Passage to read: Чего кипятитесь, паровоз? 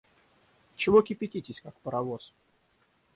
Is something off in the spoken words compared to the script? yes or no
yes